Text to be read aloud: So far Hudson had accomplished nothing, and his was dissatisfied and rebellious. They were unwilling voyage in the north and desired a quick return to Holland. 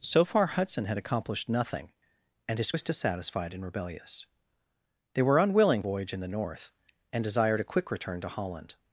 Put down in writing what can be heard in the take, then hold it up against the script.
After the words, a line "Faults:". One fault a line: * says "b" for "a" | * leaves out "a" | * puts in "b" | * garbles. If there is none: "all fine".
So far Hudson had accomplished nothing, and his was dissatisfied and rebellious. They were unwilling voyage in the north and desired a quick return to Holland.
Faults:
all fine